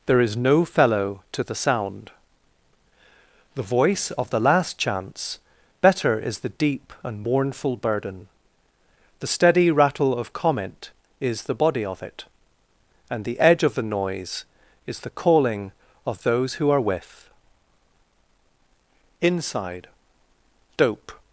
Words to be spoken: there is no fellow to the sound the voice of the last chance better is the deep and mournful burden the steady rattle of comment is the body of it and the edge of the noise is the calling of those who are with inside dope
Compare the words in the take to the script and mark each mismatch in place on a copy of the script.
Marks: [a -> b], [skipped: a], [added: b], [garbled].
there is no fellow to the sound the voice of the last chance better is the deep and mournful burden the steady rattle of comment is the body of it and the edge of the noise is the calling of those who are with inside dope